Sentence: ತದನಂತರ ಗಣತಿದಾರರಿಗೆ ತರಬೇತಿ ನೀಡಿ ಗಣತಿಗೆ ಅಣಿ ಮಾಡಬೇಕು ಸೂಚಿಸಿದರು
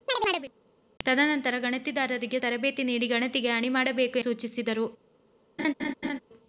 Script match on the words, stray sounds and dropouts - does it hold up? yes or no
no